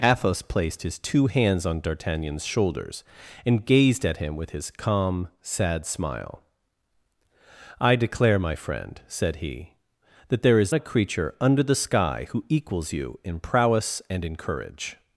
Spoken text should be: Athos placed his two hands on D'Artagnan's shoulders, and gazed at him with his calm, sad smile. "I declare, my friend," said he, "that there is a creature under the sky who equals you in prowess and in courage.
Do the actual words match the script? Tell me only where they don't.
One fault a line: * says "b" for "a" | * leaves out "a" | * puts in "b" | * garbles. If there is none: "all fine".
all fine